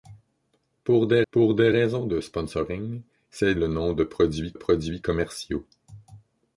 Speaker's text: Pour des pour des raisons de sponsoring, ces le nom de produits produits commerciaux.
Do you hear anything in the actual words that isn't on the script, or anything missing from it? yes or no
no